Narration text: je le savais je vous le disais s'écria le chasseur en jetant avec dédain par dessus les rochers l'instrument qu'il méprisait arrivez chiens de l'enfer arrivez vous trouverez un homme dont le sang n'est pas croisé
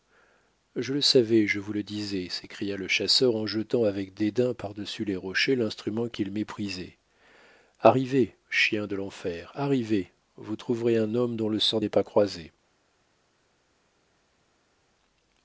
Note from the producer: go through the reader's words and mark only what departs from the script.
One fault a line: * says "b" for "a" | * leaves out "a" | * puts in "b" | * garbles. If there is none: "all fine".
all fine